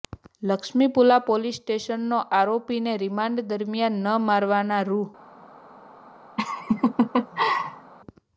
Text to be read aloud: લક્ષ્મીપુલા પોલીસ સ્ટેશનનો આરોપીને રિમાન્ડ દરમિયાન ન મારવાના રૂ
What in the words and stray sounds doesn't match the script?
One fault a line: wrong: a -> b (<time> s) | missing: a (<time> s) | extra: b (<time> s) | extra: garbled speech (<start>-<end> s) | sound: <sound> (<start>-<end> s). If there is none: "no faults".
sound: laugh (6.4-7.9 s)